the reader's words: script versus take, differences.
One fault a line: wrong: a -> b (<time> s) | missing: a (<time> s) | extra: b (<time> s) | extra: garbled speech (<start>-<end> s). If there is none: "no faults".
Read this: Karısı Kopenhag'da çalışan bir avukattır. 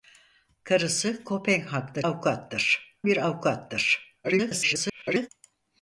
wrong: çalışan -> avukattır (2.1 s)
extra: garbled speech (4.2-5.3 s)